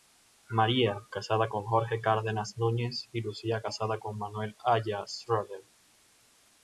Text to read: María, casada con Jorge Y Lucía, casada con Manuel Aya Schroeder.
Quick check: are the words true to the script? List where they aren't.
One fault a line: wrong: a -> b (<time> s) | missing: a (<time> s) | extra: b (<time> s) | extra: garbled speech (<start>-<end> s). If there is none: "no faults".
extra: Cárdenas Núñez (2.0 s)